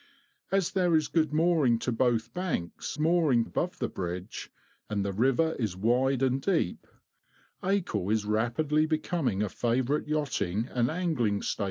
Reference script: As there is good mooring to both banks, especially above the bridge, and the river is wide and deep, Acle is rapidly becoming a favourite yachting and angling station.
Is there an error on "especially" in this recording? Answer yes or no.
yes